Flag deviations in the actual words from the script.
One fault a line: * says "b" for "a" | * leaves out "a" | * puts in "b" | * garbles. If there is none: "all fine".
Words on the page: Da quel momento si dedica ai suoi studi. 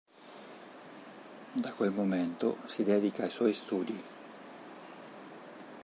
all fine